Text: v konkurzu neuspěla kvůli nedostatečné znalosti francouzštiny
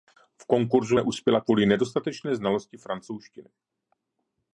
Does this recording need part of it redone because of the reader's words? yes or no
no